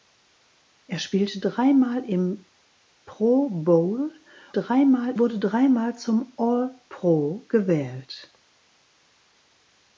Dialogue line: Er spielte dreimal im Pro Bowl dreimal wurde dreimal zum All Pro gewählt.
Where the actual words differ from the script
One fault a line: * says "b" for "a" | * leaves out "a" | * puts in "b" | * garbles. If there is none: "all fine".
all fine